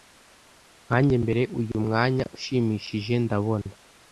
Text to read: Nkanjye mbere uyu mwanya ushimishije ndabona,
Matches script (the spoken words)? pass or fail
pass